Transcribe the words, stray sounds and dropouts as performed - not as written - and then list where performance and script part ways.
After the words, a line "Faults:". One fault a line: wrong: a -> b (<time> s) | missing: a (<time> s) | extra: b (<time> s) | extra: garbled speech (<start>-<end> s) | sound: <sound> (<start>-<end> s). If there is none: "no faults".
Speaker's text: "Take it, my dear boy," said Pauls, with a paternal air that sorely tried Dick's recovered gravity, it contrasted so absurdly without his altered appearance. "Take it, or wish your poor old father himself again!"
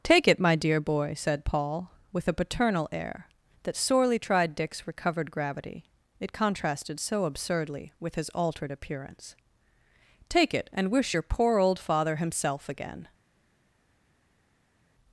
"Take it, my dear boy," said Paul, with a paternal air that sorely tried Dick's recovered gravity, it contrasted so absurdly with his altered appearance. "Take it, and wish your poor old father himself again!"
Faults:
wrong: Pauls -> Paul (1.4 s)
wrong: without -> with (8.0 s)
wrong: or -> and (10.7 s)